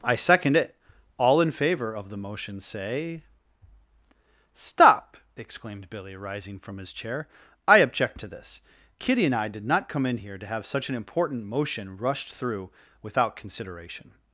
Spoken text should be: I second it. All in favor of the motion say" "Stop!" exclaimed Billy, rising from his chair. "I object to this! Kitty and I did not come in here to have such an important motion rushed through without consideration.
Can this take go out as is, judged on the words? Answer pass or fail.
pass